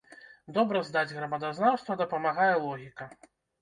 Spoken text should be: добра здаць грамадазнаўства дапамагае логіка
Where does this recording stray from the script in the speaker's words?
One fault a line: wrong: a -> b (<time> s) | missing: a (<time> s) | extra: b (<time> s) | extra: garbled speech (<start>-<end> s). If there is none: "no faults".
no faults